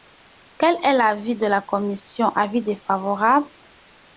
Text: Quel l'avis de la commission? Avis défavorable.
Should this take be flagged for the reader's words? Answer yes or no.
yes